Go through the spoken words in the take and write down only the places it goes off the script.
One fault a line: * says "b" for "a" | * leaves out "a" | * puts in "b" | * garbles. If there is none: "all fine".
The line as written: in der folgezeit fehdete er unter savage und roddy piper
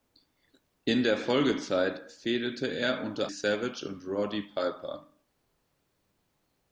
all fine